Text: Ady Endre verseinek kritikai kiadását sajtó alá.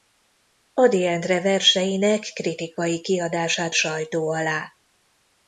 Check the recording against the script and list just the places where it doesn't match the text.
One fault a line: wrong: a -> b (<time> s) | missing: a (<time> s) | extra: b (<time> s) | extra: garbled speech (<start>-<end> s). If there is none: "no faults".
no faults